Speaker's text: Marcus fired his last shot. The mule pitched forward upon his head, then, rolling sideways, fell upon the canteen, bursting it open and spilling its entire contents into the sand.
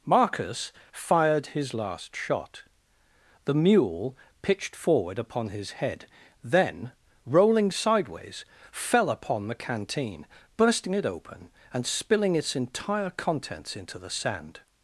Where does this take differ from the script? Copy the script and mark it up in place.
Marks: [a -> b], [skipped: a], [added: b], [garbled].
Marcus fired his last shot. The mule pitched forward upon his head, then, rolling sideways, fell upon the canteen, bursting it open and spilling its entire contents into the sand.